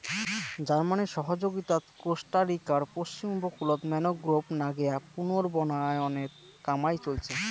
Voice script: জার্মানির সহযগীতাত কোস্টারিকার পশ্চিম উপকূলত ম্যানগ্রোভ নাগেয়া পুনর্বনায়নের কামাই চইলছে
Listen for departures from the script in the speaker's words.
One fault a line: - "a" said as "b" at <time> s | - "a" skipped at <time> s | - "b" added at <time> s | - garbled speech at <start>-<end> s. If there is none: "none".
none